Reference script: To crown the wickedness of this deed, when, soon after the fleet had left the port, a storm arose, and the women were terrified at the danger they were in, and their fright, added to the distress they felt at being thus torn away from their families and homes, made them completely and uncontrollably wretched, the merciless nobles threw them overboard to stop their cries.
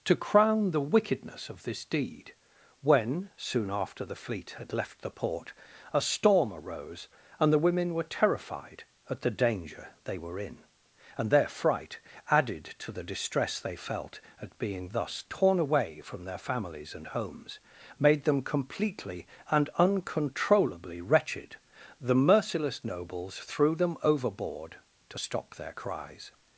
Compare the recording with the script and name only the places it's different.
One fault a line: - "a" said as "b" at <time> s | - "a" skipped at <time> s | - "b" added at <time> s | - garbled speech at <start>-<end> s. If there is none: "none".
none